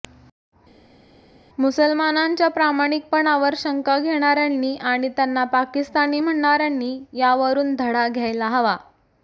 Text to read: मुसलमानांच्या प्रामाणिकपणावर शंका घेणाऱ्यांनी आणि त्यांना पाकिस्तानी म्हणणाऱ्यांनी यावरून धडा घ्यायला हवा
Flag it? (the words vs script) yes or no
no